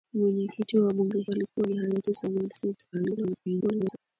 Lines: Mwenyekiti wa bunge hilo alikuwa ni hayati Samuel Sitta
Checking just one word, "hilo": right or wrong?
wrong